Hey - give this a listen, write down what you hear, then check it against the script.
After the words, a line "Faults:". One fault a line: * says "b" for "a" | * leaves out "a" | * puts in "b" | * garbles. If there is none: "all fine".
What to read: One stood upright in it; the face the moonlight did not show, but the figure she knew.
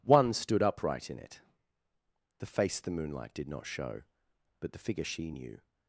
One stood upright in it; the face the moonlight did not show, but the figure she knew.
Faults:
all fine